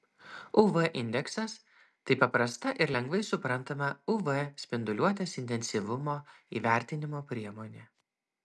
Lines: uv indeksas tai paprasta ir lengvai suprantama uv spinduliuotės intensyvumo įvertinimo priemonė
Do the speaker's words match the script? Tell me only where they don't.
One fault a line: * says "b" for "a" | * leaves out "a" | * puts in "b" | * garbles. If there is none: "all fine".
all fine